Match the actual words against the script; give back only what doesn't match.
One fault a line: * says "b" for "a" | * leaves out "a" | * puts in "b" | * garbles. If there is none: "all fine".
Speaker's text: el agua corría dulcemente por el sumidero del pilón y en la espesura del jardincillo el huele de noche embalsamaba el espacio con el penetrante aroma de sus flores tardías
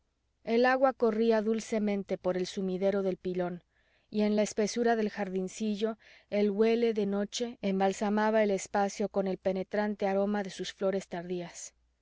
all fine